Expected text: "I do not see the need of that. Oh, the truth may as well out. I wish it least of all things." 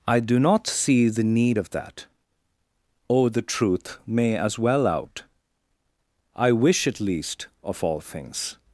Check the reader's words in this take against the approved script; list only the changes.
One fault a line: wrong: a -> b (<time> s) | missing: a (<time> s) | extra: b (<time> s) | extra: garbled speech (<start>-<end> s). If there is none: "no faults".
no faults